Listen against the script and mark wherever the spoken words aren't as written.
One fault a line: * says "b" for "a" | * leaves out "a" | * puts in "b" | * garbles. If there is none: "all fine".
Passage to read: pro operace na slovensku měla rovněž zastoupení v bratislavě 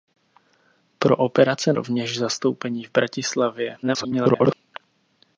* leaves out "na slovensku měla"
* garbles